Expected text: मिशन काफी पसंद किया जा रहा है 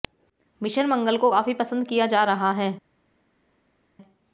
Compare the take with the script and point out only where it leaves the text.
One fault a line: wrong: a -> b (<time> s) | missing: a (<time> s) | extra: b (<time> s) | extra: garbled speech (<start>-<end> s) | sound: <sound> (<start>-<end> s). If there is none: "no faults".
extra: मंगल को (0.8 s)